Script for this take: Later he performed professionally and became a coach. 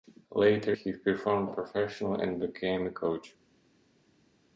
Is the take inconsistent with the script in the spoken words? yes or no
no